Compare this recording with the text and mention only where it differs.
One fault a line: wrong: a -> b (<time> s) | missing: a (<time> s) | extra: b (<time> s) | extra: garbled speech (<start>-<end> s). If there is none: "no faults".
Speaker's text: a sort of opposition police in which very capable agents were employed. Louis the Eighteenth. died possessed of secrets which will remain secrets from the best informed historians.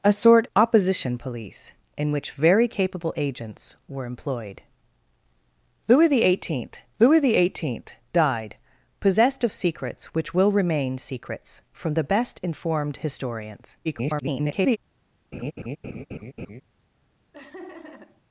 missing: of (0.5 s)
extra: louis the Eighteenth (7.0 s)
extra: garbled speech (13.8-14.8 s)